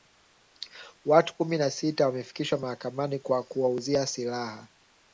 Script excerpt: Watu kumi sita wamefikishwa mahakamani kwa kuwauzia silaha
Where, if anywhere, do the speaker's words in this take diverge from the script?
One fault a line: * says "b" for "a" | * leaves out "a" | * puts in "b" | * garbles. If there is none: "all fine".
* puts in "na"